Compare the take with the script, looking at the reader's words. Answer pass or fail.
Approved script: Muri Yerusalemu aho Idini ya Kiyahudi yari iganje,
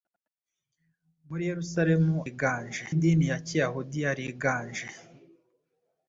fail